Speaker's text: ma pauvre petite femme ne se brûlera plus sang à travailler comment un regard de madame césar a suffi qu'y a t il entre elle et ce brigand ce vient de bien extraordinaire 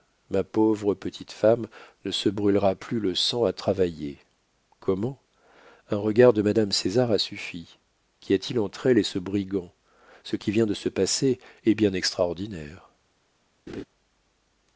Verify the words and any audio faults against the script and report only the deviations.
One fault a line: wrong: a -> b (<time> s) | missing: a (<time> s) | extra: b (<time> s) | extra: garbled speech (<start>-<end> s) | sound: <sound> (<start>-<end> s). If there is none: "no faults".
extra: le (3.0 s)
extra: qui (10.4 s)
extra: se passer est (10.7 s)
sound: laugh (13.7-13.8 s)